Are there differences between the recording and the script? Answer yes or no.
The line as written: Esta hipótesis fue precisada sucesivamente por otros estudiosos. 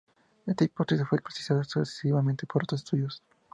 no